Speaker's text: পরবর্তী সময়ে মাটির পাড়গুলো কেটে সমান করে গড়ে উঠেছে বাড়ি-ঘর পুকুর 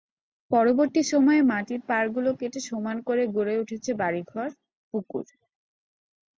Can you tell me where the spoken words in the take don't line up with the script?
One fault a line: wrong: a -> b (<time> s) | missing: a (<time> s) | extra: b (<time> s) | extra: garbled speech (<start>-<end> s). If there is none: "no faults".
no faults